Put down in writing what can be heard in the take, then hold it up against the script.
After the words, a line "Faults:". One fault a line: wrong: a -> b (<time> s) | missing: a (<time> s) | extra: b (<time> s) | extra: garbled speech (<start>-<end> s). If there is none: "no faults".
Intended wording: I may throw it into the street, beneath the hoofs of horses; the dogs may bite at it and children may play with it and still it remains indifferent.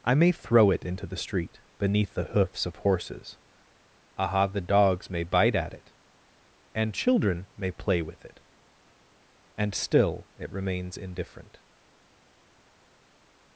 I may throw it into the street, beneath the hoofs of horses; aha the dogs may bite at it and children may play with it and still it remains indifferent.
Faults:
extra: aha (4.2 s)